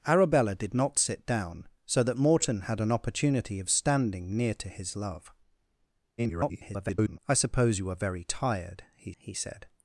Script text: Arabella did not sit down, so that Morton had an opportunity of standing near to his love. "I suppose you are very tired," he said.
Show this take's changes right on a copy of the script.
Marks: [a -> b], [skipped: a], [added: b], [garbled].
Arabella did not sit down, so that Morton had an opportunity of standing near to his love. [garbled] "I suppose you are very tired," he [added: he] said.